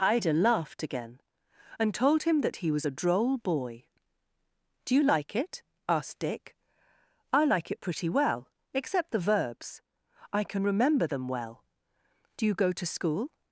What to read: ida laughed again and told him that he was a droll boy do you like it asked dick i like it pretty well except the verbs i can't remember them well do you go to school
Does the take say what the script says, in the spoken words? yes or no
no